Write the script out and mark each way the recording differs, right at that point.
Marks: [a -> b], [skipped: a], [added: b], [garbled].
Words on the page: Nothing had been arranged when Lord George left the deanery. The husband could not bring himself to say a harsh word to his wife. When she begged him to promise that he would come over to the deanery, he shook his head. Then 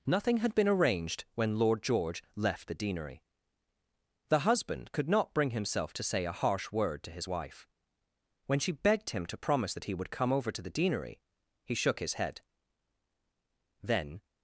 Nothing had been arranged when Lord George left the deanery. The husband could not bring himself to say a harsh word to his wife. When she begged him to promise that he would come over to the deanery, he shook his head. Then